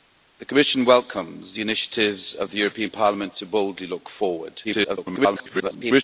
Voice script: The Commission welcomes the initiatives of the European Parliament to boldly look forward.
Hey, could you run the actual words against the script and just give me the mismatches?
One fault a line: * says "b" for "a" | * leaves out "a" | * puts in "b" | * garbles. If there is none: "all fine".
* garbles